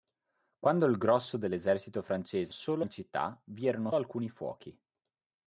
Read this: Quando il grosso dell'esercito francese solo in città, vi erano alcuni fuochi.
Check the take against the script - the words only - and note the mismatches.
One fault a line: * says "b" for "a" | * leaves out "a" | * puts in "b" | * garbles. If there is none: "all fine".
all fine